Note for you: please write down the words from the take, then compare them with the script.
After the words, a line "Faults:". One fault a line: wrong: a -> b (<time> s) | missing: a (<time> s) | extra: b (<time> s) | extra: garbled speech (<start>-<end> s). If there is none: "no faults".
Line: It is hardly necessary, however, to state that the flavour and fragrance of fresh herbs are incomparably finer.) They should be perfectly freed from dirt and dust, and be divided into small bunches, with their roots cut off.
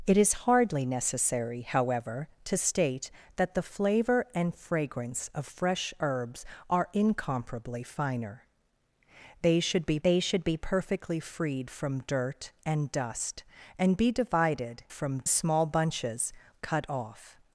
It is hardly necessary, however, to state that the flavour and fragrance of fresh herbs are incomparably finer.) They should be They should be perfectly freed from dirt and dust, and be divided from small bunches, cut off.
Faults:
extra: They should be (10.0 s)
wrong: into -> from (14.9 s)
missing: with their roots (16.3 s)